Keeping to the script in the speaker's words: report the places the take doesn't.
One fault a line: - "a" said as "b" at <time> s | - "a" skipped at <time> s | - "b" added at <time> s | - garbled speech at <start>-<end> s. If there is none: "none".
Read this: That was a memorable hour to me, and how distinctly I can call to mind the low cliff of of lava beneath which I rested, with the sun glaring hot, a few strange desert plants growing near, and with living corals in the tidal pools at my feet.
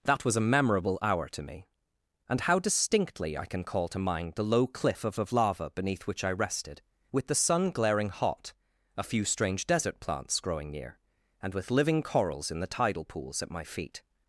none